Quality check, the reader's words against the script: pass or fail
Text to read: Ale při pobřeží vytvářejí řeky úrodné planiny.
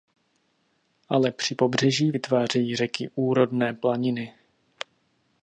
pass